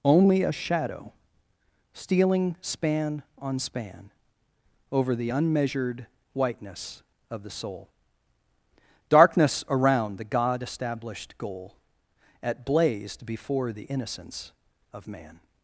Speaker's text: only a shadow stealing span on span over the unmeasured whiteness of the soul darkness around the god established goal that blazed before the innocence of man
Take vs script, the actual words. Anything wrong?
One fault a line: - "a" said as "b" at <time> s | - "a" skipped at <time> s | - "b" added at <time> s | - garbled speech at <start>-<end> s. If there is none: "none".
- "that" said as "at" at 12.4 s